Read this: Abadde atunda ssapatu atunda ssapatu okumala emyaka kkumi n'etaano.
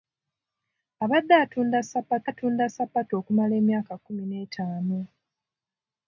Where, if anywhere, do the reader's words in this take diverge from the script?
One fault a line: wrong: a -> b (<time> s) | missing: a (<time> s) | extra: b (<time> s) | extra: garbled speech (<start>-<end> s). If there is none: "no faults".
no faults